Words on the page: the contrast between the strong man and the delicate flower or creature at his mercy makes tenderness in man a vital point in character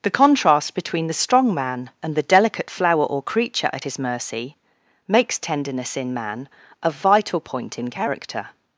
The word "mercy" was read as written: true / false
true